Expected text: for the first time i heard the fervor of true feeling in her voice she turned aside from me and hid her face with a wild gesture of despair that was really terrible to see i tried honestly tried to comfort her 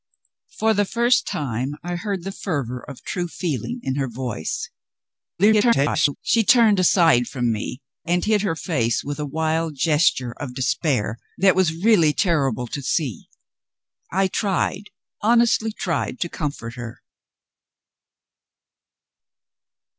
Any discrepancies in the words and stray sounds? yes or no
yes